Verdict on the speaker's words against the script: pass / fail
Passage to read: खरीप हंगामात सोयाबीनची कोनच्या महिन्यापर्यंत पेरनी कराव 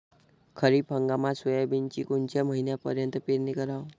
pass